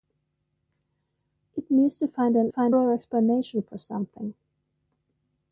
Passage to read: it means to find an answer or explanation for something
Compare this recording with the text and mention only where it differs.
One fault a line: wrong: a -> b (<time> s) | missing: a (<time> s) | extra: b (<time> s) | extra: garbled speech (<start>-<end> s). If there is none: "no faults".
wrong: answer -> find (2.5 s)